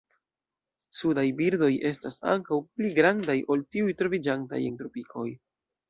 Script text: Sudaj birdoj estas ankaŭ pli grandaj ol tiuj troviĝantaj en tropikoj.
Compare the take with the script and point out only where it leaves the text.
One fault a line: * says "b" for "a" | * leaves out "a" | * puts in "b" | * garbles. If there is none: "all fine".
all fine